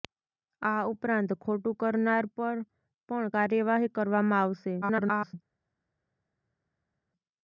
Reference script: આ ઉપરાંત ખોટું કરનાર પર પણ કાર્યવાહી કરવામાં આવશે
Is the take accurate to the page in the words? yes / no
no